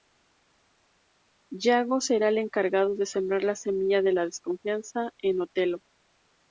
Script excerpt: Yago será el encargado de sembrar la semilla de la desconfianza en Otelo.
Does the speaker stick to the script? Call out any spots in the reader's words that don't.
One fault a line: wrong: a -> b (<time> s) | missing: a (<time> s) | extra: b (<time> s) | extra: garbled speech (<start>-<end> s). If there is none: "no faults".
no faults